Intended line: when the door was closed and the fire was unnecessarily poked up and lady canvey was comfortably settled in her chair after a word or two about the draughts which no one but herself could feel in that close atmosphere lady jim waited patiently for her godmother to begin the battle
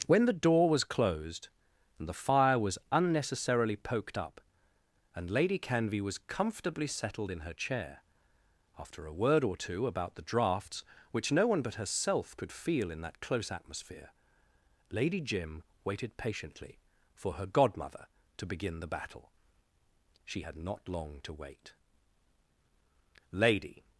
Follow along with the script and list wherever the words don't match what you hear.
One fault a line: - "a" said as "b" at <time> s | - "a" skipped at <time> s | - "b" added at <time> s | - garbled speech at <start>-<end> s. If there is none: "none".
- "she had not long to wait lady" added at 20.2 s